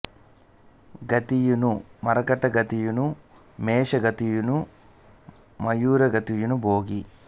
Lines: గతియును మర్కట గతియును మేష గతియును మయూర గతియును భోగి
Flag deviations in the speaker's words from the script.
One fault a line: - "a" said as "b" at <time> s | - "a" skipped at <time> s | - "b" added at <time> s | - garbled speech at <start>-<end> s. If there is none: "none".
none